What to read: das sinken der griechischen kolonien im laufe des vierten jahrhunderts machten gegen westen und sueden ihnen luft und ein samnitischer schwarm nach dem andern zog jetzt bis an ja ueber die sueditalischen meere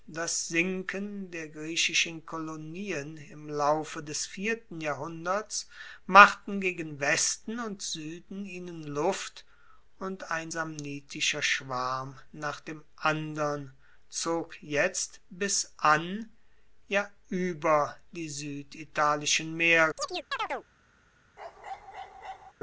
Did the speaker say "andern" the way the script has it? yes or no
yes